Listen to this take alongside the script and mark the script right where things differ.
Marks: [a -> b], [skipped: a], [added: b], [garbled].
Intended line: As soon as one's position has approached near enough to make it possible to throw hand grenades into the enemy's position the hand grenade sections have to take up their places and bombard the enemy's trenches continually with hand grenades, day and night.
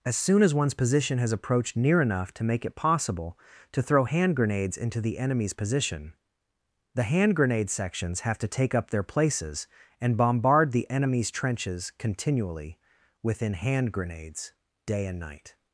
As soon as one's position has approached near enough to make it possible to throw hand grenades into the enemy's position the hand grenade sections have to take up their places and bombard the enemy's trenches continually [with -> within] hand grenades, day and night.